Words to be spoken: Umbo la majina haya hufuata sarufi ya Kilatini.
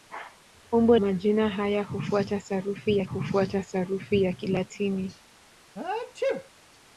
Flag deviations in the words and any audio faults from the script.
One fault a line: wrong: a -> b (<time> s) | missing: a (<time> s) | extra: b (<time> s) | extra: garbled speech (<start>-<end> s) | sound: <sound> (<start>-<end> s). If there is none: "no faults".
missing: la (1.0 s)
extra: hufuata sarufi ya (3.0 s)
sound: sneeze (5.8-6.5 s)